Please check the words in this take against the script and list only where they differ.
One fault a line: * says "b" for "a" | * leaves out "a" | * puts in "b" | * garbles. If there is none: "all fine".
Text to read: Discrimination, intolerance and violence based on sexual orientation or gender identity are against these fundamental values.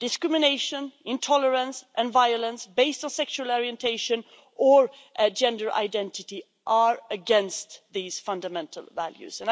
all fine